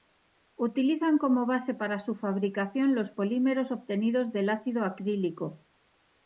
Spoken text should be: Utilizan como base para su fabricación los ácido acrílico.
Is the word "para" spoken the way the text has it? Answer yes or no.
yes